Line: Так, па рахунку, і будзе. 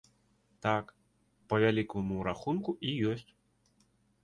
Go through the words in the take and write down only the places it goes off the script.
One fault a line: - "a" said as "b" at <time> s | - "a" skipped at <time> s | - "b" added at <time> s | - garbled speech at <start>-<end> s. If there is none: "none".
- "вялікаму" added at 1.6 s
- "будзе" said as "ёсць" at 3.1 s